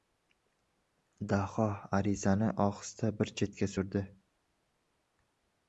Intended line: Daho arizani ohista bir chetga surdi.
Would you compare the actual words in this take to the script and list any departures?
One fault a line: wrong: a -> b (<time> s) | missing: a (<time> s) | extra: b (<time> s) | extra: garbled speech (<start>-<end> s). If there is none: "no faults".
no faults